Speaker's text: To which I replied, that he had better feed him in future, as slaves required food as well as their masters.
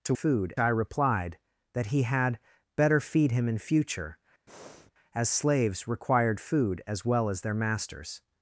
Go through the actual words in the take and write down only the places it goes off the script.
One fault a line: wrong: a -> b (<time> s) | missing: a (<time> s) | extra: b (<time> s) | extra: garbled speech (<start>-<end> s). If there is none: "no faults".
wrong: which -> food (0.1 s)